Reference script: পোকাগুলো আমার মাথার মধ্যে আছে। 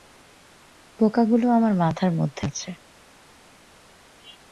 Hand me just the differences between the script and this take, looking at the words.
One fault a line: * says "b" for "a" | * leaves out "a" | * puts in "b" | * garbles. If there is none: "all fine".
all fine